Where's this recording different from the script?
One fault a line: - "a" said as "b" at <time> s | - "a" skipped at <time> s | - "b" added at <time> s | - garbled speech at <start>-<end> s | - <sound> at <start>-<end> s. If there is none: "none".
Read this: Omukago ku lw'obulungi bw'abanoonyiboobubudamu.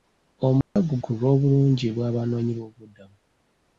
- dropout at 0.6-0.8 s